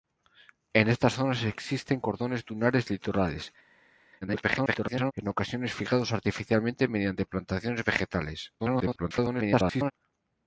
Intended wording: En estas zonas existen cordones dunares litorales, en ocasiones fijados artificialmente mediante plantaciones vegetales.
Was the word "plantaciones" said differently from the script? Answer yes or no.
no